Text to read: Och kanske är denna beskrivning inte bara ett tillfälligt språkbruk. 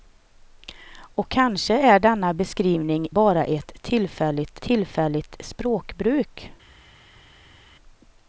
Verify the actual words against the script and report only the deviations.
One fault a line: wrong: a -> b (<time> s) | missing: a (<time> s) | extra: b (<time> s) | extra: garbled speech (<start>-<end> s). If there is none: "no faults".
missing: inte (3.1 s)
extra: tillfälligt (4.6 s)